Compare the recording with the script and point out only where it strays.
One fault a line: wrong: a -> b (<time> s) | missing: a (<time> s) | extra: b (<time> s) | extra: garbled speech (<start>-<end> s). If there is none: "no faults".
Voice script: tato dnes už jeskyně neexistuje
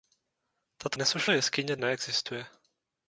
no faults